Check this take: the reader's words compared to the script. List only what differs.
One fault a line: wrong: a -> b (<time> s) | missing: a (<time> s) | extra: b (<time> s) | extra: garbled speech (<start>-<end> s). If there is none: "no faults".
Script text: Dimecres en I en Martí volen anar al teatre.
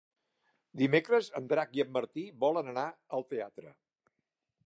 extra: Drac (1.5 s)